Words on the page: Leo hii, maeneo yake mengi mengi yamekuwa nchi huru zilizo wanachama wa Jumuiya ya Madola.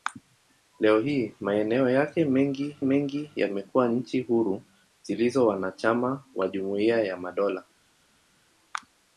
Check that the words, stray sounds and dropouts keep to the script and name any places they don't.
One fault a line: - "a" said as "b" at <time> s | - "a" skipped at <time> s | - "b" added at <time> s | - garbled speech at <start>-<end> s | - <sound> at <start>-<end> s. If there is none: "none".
none